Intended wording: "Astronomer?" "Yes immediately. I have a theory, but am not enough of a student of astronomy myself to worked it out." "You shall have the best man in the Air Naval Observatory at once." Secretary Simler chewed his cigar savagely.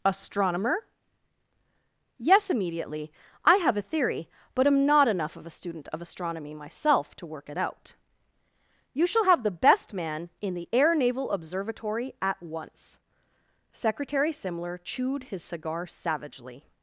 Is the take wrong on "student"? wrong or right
right